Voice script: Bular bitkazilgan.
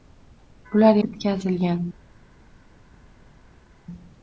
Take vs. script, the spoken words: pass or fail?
pass